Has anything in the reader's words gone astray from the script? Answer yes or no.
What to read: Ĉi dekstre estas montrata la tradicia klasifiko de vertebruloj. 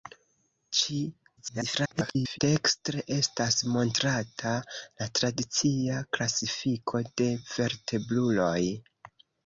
yes